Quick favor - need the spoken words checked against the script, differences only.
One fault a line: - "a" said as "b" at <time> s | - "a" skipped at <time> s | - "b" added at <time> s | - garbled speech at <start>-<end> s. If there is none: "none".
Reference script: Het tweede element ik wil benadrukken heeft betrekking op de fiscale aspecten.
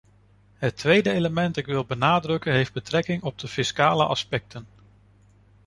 none